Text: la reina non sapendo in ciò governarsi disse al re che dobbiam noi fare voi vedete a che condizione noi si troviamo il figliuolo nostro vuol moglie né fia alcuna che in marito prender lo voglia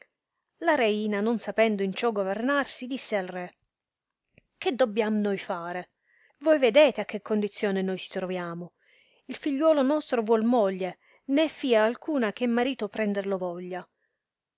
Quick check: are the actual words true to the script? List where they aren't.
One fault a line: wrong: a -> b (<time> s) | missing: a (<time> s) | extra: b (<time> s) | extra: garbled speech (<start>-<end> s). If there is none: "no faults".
no faults